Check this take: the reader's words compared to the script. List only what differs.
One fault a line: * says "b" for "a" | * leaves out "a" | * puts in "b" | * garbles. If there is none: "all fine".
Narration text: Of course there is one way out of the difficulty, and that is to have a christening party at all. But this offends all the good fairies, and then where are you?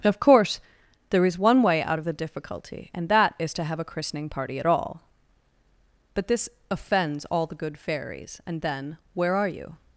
all fine